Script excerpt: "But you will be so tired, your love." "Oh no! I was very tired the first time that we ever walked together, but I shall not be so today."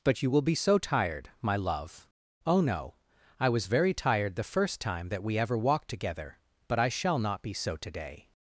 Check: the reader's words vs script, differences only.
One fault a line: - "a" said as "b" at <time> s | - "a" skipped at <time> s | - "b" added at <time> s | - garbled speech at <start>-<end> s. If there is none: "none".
- "your" said as "my" at 1.4 s